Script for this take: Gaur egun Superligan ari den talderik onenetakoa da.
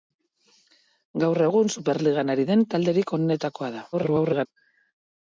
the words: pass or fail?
fail